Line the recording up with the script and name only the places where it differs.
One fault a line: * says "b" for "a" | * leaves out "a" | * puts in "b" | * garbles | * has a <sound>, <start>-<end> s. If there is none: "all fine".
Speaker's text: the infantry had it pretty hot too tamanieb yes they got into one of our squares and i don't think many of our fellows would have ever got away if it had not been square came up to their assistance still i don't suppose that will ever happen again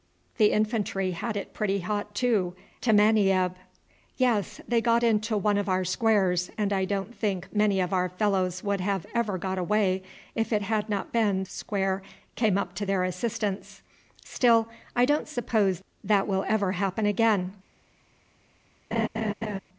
* has a laugh, 18.9-19.6 s